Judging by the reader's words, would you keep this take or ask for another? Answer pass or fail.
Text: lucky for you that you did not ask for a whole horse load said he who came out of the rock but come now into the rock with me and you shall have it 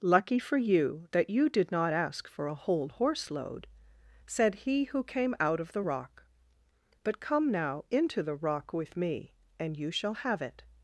pass